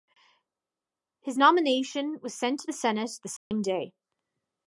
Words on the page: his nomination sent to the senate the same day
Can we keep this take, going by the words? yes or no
no